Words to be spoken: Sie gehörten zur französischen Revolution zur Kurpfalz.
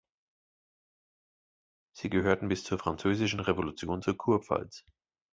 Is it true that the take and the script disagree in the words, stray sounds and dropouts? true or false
true